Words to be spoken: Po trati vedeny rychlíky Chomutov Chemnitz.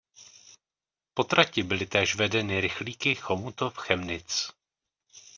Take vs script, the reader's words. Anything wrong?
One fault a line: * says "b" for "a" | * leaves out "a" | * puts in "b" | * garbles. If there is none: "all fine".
* puts in "byly též"